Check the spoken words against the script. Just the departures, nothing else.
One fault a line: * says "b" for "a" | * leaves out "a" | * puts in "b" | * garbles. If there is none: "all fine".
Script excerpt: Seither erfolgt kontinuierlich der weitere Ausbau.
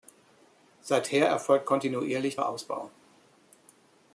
* leaves out "der weitere"